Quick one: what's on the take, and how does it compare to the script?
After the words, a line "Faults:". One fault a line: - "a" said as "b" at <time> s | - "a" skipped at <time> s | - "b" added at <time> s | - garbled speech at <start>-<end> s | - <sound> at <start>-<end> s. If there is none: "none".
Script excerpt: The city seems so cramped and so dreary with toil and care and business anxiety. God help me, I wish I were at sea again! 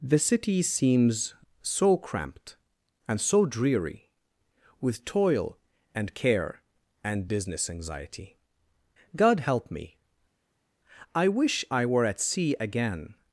The city seems so cramped and so dreary with toil and care and business anxiety. God help me, I wish I were at sea again!
Faults:
none